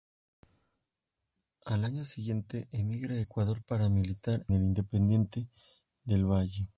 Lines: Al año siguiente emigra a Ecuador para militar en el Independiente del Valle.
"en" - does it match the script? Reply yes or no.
no